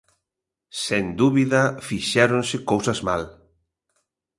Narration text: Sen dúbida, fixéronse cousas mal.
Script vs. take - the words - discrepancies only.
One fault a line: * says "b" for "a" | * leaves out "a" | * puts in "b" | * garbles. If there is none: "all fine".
all fine